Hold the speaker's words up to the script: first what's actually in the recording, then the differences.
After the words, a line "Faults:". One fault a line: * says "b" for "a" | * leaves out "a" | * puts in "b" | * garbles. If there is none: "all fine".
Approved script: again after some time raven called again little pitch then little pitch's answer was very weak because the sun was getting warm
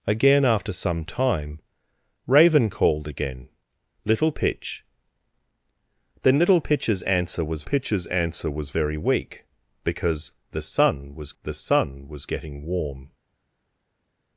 again after some time raven called again little pitch then little pitch's answer was pitch's answer was very weak because the sun was the sun was getting warm
Faults:
* puts in "pitch's answer was"
* puts in "the sun was"